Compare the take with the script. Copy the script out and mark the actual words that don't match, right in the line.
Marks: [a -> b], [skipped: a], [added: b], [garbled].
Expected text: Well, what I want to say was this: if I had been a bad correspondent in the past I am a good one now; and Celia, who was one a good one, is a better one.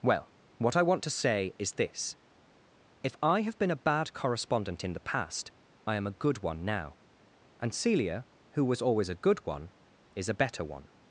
Well, what I want to say [was -> is] this: if I [had -> have] been a bad correspondent in the past I am a good one now; and Celia, who was [one -> always] a good one, is a better one.